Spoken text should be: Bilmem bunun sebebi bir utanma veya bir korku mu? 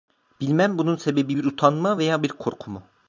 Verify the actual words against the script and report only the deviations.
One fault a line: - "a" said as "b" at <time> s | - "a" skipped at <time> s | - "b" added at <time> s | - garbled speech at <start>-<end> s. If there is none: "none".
none